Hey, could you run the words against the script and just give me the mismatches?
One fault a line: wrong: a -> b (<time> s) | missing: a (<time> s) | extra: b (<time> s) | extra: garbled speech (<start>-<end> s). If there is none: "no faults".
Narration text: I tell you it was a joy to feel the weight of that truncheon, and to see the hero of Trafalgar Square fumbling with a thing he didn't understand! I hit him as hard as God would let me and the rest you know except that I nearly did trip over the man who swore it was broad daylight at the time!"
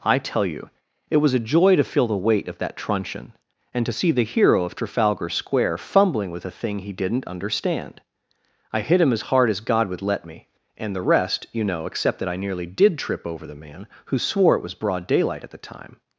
no faults